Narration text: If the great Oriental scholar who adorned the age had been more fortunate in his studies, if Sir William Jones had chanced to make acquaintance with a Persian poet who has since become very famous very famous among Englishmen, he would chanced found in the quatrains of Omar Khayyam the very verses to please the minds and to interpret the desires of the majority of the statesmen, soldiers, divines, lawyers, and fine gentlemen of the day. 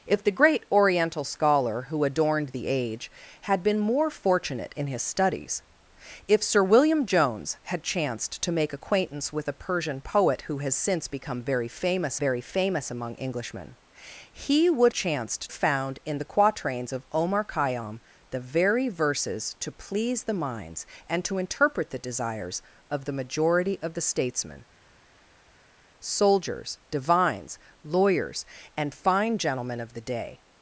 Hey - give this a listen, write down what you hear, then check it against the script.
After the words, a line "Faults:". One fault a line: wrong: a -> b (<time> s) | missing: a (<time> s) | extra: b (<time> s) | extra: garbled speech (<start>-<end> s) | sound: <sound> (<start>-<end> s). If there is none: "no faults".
If the great Oriental scholar who adorned the age had been more fortunate in his studies, if Sir William Jones had chanced to make acquaintance with a Persian poet who has since become very famous very famous among Englishmen, he would chanced found in the quatrains of Omar Khayyam the very verses to please the minds and to interpret the desires of the majority of the statesmen, soldiers, divines, lawyers, and fine gentlemen of the day.
Faults:
no faults